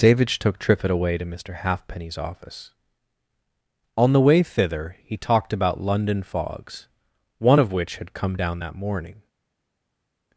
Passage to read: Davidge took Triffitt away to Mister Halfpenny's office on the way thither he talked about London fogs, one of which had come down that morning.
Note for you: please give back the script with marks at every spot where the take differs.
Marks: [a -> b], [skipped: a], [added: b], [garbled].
Davidge took Triffitt away to Mister Halfpenny's office on the way thither he talked about London fogs, one of which had come down that morning.